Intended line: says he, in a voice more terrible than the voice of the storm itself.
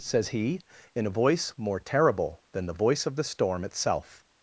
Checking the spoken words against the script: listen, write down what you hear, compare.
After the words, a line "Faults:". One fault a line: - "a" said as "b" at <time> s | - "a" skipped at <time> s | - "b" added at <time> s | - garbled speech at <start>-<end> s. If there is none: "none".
says he, in a voice more terrible than the voice of the storm itself.
Faults:
none